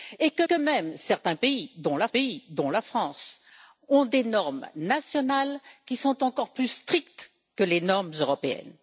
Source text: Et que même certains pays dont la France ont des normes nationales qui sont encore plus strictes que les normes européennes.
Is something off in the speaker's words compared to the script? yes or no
yes